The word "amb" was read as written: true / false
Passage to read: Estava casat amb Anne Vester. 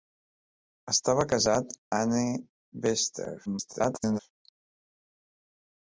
false